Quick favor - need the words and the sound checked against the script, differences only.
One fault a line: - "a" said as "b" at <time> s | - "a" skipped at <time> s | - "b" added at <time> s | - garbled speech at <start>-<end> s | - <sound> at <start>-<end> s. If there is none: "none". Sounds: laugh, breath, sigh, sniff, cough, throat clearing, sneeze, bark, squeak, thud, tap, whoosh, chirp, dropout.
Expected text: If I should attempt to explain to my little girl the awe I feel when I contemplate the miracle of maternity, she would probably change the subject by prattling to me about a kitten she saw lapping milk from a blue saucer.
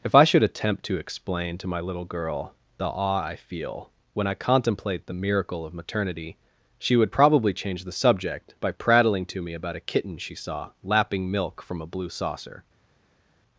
none